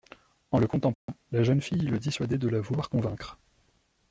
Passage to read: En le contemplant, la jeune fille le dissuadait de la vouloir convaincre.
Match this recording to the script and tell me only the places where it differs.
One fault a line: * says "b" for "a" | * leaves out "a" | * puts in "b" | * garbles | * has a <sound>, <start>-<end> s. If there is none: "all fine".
* has a dropout, 0.9-1.1 s